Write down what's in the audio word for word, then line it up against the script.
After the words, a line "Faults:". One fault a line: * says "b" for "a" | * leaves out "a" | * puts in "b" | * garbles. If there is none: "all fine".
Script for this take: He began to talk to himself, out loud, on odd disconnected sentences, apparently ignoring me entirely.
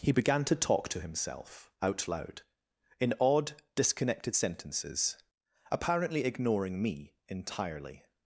He began to talk to himself, out loud, in odd disconnected sentences, apparently ignoring me entirely.
Faults:
* says "in" for "on"